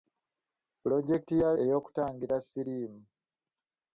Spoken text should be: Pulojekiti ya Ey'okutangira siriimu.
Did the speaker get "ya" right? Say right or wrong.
right